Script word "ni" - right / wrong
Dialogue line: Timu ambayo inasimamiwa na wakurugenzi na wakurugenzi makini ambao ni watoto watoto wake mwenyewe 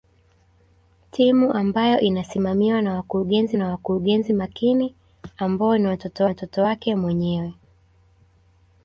right